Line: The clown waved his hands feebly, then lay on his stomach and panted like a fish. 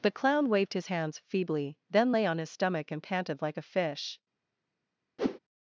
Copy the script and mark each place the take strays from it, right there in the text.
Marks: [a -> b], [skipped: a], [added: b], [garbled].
The clown waved his hands feebly, then lay on his stomach and panted like a fish.